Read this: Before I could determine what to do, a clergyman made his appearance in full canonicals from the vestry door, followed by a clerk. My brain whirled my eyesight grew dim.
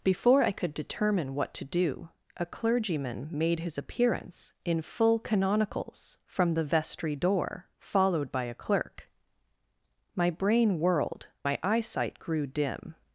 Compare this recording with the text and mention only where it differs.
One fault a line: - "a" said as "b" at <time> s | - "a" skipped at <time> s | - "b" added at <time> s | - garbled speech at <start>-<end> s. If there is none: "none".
none